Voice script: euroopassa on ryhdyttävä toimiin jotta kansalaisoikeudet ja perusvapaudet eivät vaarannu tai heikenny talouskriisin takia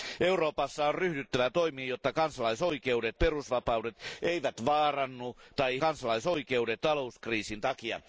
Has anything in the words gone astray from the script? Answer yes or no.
yes